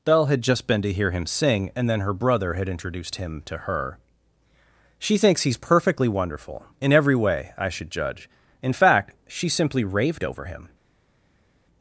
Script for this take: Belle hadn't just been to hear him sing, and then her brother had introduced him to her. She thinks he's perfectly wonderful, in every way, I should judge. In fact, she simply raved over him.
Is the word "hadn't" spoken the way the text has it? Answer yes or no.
no